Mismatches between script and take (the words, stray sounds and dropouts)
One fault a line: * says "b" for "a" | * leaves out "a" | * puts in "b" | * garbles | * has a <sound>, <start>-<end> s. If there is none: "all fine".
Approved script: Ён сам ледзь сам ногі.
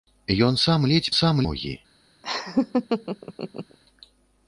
* has a laugh, 2.2-3.8 s